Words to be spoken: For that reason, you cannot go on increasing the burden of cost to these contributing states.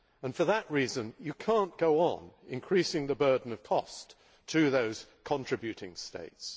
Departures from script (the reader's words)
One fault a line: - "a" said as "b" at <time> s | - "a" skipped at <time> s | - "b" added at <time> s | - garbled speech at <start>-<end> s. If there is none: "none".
- "these" said as "those" at 4.7 s